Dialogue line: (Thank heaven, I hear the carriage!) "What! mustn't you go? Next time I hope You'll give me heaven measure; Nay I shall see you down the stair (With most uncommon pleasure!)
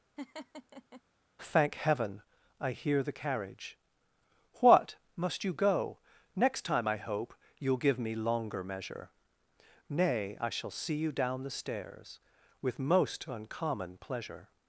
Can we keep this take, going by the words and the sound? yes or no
no